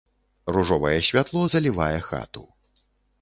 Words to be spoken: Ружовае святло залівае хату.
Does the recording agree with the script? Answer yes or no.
yes